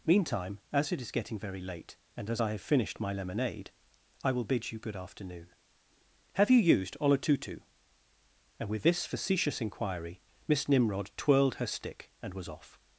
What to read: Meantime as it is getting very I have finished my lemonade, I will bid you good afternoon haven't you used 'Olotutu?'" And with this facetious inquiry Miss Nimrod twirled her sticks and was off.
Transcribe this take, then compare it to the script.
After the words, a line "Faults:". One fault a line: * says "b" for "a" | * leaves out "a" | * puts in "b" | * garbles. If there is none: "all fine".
Meantime as it is getting very late, and as I have finished my lemonade, I will bid you good afternoon have you used 'Olotutu?'" And with this facetious inquiry Miss Nimrod twirled her stick and was off.
Faults:
* puts in "late and as"
* says "have" for "haven't"
* says "stick" for "sticks"